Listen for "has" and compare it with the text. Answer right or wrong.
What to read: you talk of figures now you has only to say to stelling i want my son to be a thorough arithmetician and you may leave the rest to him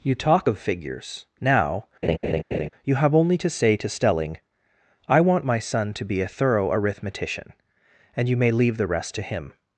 wrong